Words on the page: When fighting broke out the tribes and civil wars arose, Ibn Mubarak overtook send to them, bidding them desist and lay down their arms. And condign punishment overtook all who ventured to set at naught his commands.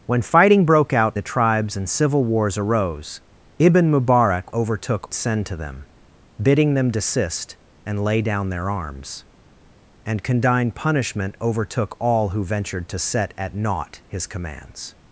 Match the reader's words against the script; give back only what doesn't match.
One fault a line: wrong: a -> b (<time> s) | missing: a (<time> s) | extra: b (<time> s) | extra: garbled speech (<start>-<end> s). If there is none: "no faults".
no faults